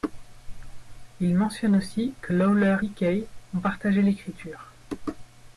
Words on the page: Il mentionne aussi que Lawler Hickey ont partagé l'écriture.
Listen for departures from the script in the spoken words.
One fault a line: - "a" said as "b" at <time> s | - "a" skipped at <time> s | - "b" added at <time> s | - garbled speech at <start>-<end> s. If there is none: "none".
none